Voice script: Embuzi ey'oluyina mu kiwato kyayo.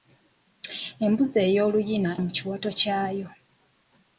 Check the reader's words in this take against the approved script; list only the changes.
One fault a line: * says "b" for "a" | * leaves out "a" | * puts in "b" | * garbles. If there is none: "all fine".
all fine